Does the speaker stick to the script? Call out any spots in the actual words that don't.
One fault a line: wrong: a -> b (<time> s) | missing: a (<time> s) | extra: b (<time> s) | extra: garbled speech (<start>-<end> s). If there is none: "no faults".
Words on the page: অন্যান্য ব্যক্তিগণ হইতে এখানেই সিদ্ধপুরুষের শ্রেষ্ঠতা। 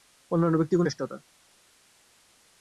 missing: হইতে এখানেই সিদ্ধপুরুষের (0.9 s)